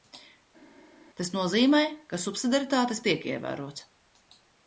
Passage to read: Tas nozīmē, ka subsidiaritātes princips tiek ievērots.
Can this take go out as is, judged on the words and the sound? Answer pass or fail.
fail